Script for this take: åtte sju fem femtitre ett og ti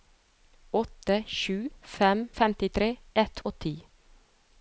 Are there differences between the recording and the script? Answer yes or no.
no